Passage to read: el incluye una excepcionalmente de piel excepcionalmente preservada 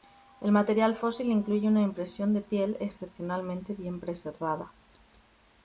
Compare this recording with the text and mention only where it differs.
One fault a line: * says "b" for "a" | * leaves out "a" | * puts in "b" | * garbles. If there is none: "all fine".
* puts in "material fósil"
* says "impresión" for "excepcionalmente"
* puts in "bien"